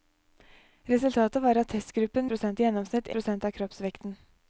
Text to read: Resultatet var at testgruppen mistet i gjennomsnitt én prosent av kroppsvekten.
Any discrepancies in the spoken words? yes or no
yes